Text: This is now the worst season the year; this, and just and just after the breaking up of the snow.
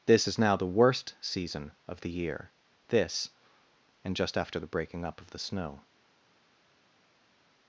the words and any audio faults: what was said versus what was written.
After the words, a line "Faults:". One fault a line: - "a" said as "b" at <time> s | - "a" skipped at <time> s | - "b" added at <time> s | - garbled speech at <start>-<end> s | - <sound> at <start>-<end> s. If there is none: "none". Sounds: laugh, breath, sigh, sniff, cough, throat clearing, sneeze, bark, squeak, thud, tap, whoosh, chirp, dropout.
This is now the worst season of the year; this, and just after the breaking up of the snow.
Faults:
- "of" added at 1.9 s
- "and just" skipped at 4.3 s